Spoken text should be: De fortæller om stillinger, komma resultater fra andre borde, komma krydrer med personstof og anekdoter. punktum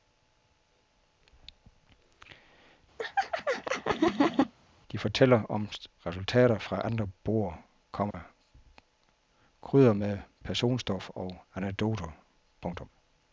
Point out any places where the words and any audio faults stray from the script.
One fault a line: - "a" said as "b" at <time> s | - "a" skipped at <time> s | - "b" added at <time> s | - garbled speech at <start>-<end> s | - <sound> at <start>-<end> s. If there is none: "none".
- laugh at 3.0-4.5 s
- "stillinger komma" skipped at 5.7 s
- dropout at 8.1-8.1 s